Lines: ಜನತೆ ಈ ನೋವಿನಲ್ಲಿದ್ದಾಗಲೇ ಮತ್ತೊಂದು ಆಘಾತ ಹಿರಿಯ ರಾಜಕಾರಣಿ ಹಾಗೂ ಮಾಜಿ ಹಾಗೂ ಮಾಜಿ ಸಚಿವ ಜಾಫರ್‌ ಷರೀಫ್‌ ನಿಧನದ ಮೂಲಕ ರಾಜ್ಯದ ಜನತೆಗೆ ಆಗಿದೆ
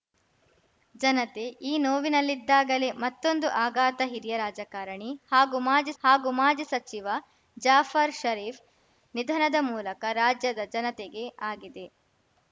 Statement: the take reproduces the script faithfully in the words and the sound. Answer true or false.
true